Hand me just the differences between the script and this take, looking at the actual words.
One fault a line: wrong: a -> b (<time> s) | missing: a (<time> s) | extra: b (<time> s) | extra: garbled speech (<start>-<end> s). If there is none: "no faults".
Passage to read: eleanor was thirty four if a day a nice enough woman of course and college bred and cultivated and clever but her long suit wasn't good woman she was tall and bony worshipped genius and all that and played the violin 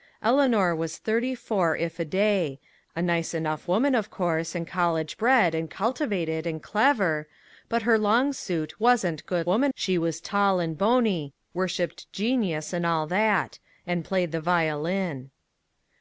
no faults